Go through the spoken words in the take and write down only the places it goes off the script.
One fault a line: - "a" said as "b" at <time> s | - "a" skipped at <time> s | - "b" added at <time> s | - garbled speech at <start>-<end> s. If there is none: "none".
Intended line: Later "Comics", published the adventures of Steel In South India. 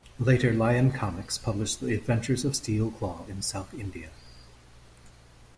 - "Lion" added at 0.5 s
- "Claw" added at 2.9 s